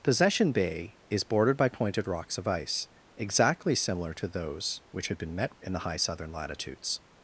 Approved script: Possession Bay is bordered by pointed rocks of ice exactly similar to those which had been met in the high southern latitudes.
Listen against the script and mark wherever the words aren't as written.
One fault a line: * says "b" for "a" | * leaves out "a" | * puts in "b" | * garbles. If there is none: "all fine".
all fine